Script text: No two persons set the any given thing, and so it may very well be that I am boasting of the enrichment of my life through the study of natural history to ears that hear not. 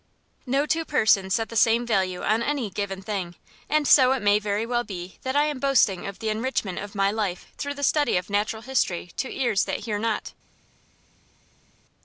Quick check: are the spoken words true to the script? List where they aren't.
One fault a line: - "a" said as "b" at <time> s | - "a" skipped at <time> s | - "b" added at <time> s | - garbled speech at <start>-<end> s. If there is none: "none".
- "same value on" added at 1.6 s